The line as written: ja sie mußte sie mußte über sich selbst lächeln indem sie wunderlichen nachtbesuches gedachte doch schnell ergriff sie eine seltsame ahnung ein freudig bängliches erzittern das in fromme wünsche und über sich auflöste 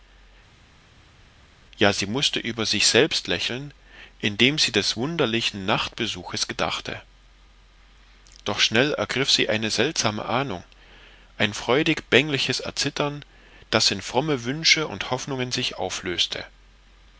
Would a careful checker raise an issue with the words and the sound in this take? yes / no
yes